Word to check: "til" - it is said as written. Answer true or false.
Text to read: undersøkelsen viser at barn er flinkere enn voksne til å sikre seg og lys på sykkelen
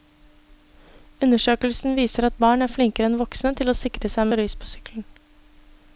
true